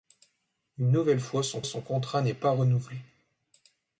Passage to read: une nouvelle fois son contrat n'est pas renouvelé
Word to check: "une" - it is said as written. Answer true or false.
true